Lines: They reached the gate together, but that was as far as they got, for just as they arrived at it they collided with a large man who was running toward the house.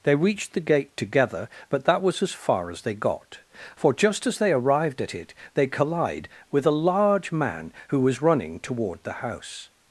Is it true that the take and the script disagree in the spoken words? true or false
true